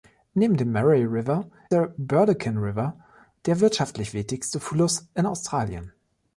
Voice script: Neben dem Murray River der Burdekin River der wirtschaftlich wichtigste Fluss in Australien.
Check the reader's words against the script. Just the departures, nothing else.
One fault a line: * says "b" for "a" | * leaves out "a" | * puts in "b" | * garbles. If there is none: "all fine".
all fine